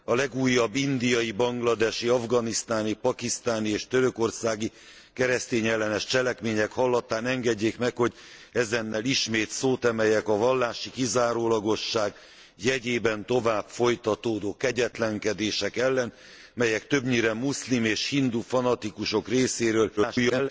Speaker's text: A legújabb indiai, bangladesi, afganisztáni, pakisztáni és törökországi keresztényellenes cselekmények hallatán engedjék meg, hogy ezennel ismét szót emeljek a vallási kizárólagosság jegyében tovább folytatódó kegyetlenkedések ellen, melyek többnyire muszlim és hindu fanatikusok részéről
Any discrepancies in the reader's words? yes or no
yes